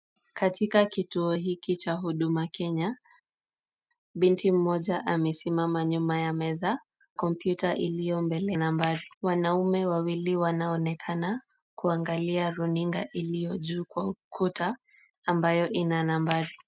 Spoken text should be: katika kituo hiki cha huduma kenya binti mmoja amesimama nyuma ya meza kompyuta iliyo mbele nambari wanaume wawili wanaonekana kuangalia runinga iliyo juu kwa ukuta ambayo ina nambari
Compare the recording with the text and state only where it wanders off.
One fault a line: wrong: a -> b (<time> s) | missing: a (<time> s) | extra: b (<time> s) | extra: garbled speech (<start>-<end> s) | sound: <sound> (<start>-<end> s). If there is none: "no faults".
no faults